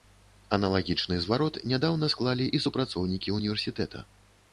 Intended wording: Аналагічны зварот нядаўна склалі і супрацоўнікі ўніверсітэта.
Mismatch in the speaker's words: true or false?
false